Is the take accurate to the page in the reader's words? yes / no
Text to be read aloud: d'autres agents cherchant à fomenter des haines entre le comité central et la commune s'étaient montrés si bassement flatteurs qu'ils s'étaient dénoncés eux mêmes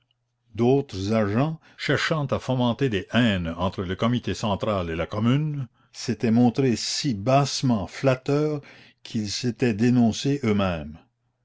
yes